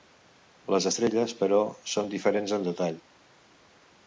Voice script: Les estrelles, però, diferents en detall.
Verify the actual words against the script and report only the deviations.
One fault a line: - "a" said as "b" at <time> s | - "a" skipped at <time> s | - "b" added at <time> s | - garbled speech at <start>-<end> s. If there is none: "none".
- "són" added at 1.9 s